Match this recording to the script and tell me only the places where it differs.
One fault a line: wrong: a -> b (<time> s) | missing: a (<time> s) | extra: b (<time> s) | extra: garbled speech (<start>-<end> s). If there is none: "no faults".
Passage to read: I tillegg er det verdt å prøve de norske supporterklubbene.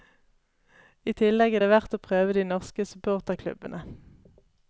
no faults